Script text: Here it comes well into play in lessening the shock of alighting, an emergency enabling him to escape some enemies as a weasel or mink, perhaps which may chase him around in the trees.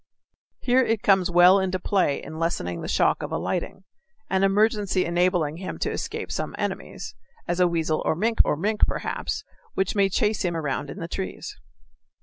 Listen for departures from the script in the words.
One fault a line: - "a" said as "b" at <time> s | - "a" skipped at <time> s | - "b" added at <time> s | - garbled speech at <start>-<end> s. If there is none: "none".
- "or mink" added at 8.4 s